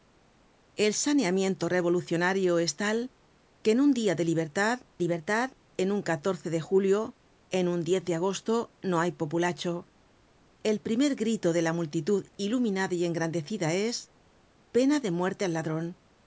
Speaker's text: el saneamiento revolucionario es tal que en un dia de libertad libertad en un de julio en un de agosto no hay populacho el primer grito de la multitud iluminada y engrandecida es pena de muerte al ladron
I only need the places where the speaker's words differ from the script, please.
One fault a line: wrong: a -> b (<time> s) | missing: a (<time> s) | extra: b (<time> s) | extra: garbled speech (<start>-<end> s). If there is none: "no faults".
no faults